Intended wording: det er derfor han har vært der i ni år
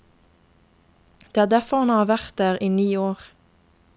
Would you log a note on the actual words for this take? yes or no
no